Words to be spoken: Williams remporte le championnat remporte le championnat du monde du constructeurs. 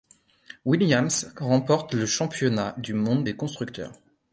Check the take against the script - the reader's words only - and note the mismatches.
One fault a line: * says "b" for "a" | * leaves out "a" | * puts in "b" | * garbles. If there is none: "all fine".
* leaves out "remporte le championnat"
* says "des" for "du"